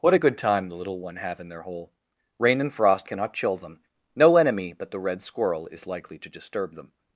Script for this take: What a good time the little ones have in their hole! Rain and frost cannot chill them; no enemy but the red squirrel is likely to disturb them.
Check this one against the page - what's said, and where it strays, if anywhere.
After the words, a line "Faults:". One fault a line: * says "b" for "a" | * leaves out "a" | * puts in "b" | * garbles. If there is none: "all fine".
What a good time the little one have in their hole! Rain and frost cannot chill them; no enemy but the red squirrel is likely to disturb them.
Faults:
* says "one" for "ones"